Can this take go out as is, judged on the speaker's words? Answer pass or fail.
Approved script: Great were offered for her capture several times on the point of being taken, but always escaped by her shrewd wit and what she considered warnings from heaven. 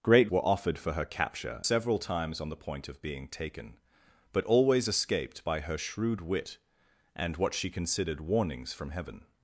pass